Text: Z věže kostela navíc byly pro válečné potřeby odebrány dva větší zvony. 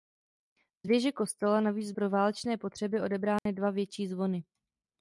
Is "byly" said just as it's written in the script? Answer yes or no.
no